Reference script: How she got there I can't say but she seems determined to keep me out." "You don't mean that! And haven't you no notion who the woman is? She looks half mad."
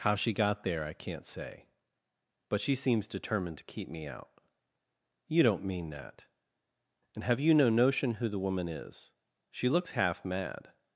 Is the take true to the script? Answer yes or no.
no